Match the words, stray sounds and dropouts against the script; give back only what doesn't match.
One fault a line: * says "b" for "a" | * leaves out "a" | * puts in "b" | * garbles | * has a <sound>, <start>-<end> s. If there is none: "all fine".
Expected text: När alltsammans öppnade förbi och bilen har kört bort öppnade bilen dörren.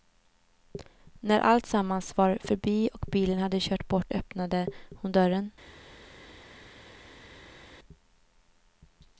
* says "var" for "öppnade"
* says "hade" for "har"
* says "hon" for "bilen"